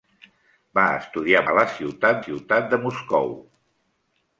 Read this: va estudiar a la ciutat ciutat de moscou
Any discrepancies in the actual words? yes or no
no